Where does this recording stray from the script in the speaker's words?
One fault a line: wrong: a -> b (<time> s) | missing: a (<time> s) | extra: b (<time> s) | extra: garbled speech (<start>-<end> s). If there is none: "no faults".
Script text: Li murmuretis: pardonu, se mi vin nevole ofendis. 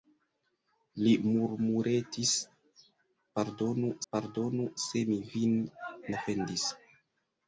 extra: pardonu (4.1 s)
missing: nevole (5.6 s)